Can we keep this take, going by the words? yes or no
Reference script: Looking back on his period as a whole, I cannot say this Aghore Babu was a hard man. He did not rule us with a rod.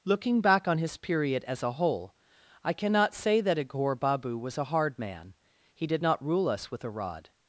no